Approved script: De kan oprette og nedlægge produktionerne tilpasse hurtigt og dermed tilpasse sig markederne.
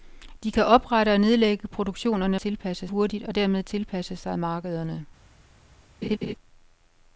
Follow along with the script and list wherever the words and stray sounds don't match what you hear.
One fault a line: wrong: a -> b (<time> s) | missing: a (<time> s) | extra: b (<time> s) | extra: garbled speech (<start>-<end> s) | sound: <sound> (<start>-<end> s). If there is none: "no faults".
sound: laugh (6.0-6.3 s)